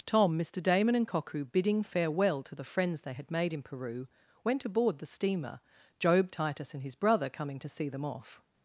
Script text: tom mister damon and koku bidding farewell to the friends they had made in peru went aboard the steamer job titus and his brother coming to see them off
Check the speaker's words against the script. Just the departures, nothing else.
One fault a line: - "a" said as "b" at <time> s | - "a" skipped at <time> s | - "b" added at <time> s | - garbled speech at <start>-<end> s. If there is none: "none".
none